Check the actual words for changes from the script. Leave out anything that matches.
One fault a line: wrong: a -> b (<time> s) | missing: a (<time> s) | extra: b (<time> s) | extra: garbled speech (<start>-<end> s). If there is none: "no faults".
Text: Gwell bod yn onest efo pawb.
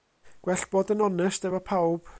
no faults